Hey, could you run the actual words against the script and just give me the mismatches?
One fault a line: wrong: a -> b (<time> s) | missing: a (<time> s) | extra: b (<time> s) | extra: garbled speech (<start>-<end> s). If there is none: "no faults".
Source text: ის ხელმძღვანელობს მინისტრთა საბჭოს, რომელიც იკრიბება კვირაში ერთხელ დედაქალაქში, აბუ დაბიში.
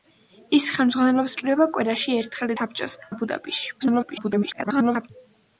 missing: მინისტრთა საბჭოს რომელიც (1.4 s)
wrong: დედაქალაქში -> საბჭოს (2.5 s)
extra: garbled speech (3.8-5.1 s)